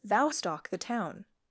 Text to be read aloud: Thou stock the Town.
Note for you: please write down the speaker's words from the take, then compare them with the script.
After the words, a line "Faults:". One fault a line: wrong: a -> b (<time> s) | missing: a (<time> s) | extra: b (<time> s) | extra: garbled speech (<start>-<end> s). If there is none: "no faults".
Thou stock the Town.
Faults:
no faults